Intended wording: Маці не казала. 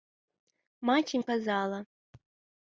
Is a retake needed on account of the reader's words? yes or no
no